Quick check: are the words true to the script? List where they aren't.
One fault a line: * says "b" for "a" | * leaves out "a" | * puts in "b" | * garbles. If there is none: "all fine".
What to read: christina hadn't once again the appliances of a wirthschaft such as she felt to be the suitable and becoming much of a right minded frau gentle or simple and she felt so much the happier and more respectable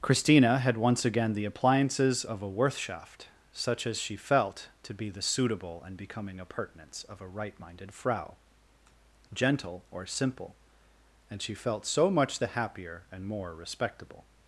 * says "had" for "hadn't"
* says "appurtenance" for "much"